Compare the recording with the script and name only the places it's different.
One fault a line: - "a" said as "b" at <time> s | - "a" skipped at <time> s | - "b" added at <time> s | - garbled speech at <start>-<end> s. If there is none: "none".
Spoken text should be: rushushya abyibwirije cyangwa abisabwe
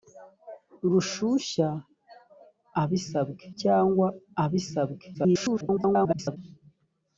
- "abyibwirije" said as "abisabwe" at 2.8 s
- garbled speech at 5.1-6.4 s